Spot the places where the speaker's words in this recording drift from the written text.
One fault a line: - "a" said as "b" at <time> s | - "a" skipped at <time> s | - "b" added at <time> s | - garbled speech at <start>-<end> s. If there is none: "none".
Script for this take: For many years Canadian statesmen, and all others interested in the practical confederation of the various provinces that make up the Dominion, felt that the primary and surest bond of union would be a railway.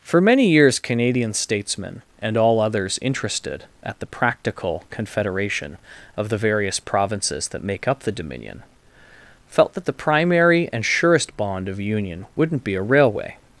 - "in" said as "at" at 3.8 s
- "would" said as "wouldn't" at 12.3 s